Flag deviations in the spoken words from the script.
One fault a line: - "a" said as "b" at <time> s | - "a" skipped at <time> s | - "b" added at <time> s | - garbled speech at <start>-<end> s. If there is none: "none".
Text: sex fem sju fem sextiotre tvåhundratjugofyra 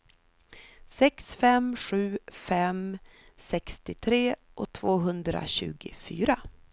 none